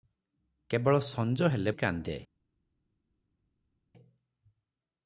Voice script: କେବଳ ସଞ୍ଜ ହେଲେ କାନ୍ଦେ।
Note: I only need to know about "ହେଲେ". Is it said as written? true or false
true